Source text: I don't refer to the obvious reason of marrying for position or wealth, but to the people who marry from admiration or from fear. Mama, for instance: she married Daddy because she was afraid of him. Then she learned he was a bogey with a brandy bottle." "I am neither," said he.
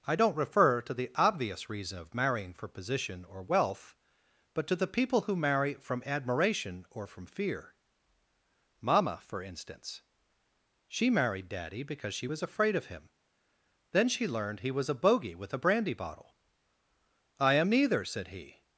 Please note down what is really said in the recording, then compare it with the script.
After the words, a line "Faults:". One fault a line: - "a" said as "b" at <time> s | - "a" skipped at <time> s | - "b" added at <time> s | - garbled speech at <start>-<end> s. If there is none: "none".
I don't refer to the obvious reason of marrying for position or wealth, but to the people who marry from admiration or from fear. Mama, for instance: she married Daddy because she was afraid of him. Then she learned he was a bogey with a brandy bottle." "I am neither," said he.
Faults:
none